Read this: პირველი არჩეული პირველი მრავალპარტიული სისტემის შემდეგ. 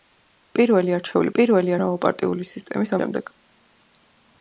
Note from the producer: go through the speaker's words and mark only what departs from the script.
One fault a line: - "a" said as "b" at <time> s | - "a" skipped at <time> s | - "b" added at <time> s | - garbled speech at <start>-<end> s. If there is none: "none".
none